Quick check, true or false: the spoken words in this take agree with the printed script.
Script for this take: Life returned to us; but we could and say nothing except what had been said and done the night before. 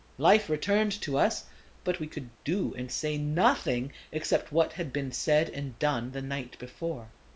false